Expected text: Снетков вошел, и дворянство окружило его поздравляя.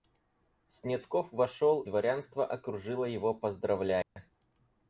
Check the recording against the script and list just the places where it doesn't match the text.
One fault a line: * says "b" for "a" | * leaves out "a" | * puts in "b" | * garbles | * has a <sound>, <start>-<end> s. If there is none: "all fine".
* leaves out "и"
* has a dropout, 4.0-4.2 s